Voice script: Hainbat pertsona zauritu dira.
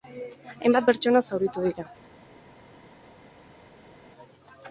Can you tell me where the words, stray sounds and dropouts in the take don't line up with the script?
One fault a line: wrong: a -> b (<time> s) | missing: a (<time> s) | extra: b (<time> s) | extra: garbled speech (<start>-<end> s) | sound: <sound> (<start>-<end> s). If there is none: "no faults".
no faults